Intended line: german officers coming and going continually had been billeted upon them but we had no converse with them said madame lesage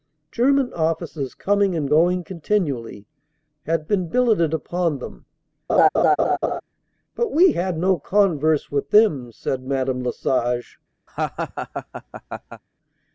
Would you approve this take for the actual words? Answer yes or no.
yes